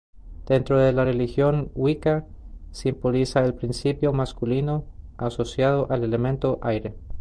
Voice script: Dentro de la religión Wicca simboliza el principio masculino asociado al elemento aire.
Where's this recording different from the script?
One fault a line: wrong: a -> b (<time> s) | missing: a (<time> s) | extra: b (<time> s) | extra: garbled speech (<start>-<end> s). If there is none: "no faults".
no faults